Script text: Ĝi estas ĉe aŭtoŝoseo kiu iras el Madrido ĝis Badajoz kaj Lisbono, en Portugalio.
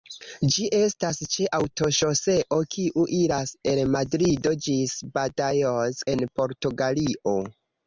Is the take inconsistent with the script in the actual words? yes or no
yes